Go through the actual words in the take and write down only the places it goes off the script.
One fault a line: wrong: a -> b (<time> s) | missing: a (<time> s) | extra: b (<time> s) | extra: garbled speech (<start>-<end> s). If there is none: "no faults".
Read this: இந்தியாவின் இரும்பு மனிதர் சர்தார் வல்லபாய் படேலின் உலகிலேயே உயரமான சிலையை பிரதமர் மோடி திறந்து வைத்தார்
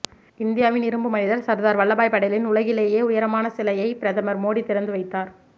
no faults